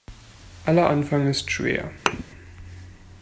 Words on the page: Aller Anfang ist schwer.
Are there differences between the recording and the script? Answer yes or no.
no